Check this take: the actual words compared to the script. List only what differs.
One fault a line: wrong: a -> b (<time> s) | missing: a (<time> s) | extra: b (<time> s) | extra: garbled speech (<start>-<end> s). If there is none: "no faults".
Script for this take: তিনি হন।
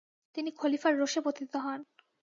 extra: খলিফার রোষে পতিত (0.5 s)